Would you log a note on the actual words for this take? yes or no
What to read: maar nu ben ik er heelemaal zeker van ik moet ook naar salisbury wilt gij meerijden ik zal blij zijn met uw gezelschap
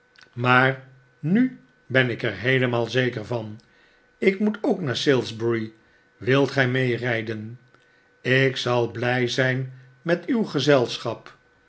no